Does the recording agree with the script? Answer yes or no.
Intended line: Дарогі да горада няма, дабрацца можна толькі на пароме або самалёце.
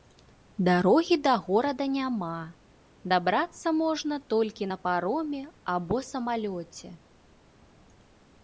yes